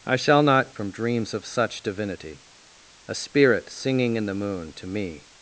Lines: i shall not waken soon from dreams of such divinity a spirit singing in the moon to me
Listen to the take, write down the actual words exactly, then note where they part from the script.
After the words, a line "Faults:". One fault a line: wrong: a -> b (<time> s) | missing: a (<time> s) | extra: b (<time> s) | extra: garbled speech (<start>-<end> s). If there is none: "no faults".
i shall not from dreams of such divinity a spirit singing in the moon to me
Faults:
missing: waken soon (0.7 s)